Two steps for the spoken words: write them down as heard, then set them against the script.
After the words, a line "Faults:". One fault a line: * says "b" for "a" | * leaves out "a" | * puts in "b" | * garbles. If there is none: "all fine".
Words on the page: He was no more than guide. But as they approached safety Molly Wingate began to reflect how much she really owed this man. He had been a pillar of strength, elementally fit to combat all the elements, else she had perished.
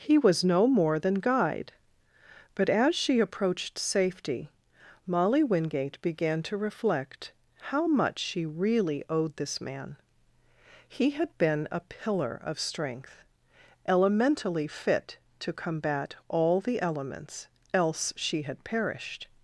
He was no more than guide. But as she approached safety Molly Wingate began to reflect how much she really owed this man. He had been a pillar of strength, elementally fit to combat all the elements, else she had perished.
Faults:
* says "she" for "they"